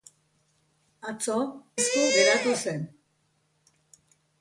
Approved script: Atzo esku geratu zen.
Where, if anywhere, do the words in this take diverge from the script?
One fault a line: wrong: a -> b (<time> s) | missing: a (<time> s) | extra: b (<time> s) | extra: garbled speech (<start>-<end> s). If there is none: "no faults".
no faults